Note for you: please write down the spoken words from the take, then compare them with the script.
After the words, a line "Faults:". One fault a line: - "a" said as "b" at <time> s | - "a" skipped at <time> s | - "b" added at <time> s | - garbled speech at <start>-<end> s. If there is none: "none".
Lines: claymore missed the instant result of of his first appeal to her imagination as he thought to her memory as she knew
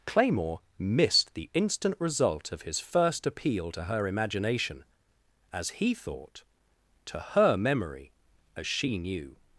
claymore missed the instant result of his first appeal to her imagination as he thought to her memory as she knew
Faults:
- "of" skipped at 2.6 s